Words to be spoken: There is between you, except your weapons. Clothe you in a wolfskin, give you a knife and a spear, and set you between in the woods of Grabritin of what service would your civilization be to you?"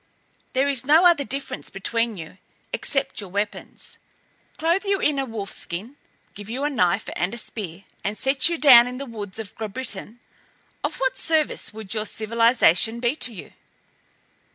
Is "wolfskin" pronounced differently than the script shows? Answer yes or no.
no